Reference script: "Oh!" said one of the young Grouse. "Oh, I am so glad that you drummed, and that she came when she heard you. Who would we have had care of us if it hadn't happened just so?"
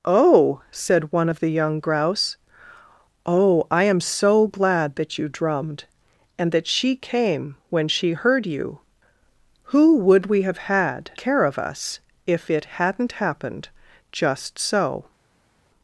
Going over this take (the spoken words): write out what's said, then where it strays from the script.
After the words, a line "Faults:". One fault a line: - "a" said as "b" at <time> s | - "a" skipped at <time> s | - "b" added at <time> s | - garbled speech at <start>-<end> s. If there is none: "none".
"Oh!" said one of the young Grouse. "Oh, I am so glad that you drummed, and that she came when she heard you. Who would we have had care of us if it hadn't happened just so?"
Faults:
none